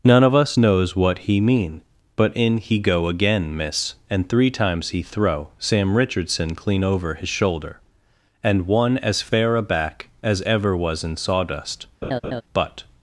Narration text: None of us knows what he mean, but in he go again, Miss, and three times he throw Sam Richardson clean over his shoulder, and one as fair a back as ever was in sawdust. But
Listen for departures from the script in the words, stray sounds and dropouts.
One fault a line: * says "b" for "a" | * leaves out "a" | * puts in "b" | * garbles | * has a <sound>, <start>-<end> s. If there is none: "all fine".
* has a laugh, 12.0-12.4 s